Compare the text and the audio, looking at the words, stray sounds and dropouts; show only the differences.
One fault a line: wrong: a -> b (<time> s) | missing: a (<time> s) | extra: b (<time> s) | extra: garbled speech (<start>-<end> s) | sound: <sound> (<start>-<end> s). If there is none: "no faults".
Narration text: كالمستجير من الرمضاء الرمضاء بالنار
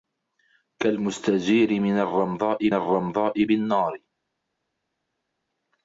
no faults